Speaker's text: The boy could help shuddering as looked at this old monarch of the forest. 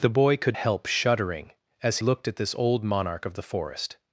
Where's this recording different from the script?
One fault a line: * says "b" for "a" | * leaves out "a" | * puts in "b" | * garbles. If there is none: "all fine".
all fine